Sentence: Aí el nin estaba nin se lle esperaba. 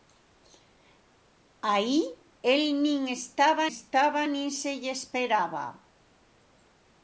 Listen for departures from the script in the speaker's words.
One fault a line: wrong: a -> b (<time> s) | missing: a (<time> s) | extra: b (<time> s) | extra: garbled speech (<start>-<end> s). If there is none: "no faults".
extra: estaba (3.7 s)